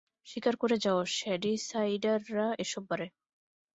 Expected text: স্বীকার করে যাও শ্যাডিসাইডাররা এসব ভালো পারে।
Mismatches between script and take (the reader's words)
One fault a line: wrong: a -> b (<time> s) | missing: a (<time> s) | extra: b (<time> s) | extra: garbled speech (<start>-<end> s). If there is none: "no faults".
missing: ভালো (2.8 s)